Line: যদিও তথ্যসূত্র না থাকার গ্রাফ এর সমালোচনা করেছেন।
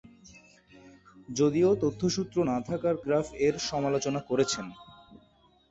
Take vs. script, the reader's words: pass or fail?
pass